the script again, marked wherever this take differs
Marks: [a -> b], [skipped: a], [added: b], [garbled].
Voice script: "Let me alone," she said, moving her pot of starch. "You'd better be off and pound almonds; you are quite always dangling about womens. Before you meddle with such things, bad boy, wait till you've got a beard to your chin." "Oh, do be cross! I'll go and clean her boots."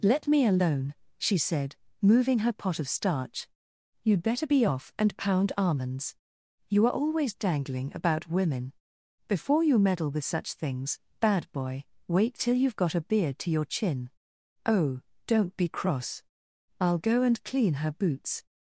"Let me alone," she said, moving her pot of starch. "You'd better be off and pound almonds; you are [skipped: quite] always dangling about [womens. -> women] Before you meddle with such things, bad boy, wait till you've got a beard to your chin." "Oh, [do -> don't] be cross! I'll go and clean her boots."